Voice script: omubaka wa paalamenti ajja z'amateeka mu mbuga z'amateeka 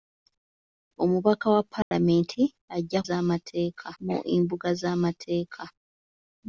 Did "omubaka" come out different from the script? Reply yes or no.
no